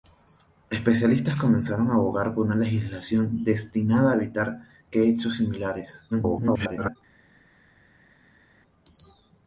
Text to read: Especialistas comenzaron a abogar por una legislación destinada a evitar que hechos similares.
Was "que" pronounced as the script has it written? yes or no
yes